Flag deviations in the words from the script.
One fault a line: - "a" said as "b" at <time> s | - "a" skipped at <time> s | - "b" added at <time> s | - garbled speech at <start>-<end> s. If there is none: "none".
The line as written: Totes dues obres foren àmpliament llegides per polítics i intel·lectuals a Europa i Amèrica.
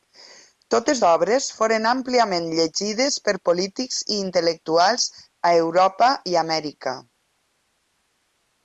- "dues" skipped at 1.0 s